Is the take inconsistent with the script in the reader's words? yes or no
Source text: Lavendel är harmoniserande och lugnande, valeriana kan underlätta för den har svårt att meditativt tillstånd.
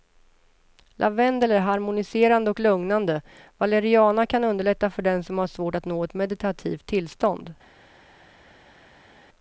yes